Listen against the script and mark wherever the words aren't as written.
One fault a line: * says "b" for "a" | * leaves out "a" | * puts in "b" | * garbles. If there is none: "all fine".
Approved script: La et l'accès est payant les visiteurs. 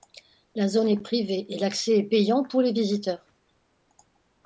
* puts in "zone est privée"
* puts in "pour"